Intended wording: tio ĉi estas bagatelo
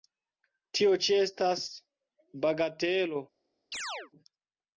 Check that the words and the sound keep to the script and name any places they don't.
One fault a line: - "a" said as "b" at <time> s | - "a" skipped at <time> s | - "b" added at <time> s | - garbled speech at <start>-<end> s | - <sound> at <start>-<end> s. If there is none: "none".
- chirp at 3.7-4.1 s